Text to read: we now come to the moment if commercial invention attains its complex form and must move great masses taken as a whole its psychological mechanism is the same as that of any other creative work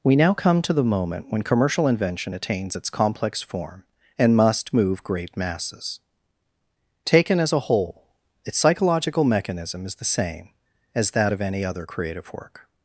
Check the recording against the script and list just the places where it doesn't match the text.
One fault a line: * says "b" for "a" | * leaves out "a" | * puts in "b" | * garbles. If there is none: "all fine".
* says "when" for "if"